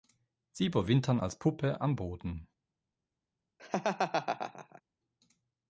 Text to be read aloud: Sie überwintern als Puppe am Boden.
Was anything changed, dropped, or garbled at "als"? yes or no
no